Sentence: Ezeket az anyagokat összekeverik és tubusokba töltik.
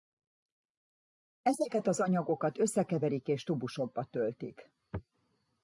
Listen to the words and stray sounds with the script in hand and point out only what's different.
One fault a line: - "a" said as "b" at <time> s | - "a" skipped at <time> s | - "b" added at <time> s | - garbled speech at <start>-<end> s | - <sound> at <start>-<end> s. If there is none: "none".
none